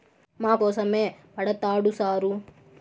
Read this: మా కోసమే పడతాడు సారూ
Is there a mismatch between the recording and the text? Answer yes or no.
no